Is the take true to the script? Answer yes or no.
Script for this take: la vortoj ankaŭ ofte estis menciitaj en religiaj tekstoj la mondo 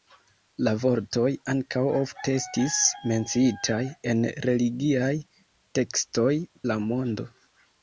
yes